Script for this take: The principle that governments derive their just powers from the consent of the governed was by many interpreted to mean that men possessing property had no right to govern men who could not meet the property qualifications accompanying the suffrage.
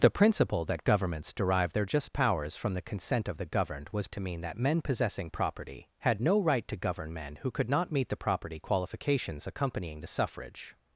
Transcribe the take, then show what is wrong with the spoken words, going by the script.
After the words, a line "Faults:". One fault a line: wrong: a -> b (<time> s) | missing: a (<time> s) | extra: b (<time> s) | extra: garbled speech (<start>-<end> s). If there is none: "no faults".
The principle that governments derive their just powers from the consent of the governed was to mean that men possessing property had no right to govern men who could not meet the property qualifications accompanying the suffrage.
Faults:
missing: by many interpreted (4.1 s)